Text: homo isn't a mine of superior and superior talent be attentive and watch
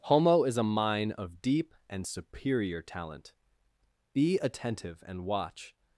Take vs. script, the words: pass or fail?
fail